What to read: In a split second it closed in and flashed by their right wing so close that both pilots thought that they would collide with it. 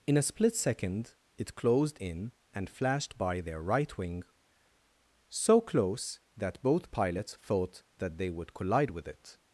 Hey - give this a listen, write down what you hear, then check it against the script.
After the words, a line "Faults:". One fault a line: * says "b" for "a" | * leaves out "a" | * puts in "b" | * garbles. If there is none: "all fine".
In a split second it closed in and flashed by their right wing so close that both pilots thought that they would collide with it.
Faults:
all fine